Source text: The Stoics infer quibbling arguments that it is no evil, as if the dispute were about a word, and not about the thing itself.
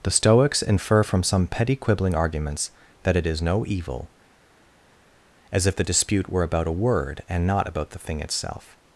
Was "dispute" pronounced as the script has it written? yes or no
yes